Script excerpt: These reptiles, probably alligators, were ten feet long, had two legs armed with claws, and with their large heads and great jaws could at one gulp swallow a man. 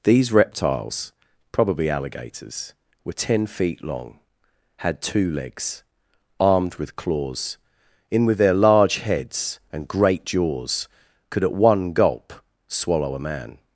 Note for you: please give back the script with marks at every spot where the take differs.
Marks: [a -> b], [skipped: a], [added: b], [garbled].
These reptiles, probably alligators, were ten feet long, had two legs armed with claws, [and -> in] with their large heads and great jaws could at one gulp swallow a man.